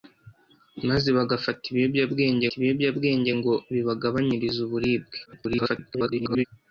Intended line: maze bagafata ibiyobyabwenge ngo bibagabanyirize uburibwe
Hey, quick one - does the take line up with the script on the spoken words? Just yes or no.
no